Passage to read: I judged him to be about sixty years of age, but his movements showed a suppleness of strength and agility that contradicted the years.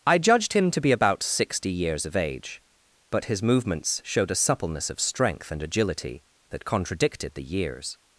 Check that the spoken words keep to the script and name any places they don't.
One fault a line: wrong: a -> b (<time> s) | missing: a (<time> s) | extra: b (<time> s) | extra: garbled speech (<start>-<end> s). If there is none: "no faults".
no faults